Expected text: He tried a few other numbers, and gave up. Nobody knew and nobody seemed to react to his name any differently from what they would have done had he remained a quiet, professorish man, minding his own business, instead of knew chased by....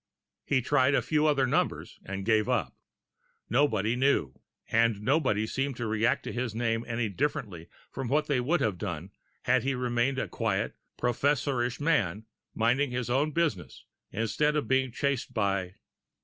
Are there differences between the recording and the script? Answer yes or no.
yes